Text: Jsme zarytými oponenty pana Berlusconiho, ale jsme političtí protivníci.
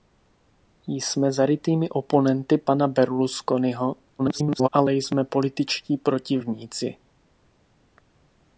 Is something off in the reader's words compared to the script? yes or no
yes